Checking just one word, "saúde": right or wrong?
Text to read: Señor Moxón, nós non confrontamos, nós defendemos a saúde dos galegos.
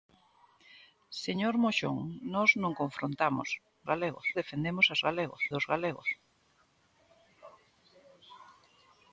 wrong